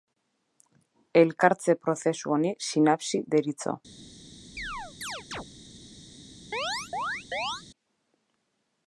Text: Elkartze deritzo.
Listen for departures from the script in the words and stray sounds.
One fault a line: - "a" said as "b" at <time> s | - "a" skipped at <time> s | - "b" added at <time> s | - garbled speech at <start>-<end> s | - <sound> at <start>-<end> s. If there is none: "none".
- "prozesu honi sinapsi" added at 1.8 s
- chirp at 4.6-5.5 s
- chirp at 6.5-7.6 s